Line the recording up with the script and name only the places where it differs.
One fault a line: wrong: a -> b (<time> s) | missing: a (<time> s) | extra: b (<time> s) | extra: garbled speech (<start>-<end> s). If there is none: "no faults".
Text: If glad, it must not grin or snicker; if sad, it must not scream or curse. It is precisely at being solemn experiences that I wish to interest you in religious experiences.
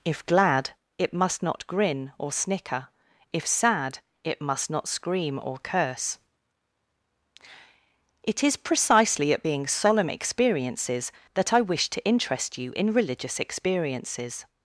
no faults